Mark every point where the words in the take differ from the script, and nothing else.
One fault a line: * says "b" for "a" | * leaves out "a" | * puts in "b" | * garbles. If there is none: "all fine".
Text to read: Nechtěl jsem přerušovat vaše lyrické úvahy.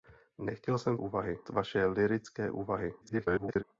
* says "úvahy" for "přerušovat"
* garbles